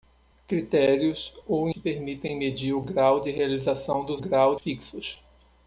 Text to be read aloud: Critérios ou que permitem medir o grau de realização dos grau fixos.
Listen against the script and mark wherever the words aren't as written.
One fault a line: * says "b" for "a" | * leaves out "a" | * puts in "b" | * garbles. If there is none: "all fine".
all fine